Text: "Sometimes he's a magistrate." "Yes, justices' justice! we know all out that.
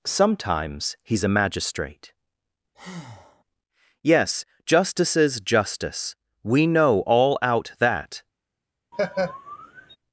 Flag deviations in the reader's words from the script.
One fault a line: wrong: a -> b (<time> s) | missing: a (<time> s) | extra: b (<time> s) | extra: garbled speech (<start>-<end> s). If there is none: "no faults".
no faults